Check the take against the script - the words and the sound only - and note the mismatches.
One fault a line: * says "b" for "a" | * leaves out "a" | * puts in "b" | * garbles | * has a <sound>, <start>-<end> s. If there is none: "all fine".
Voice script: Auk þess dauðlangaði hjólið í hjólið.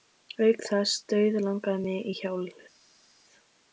* says "mig" for "hjólið"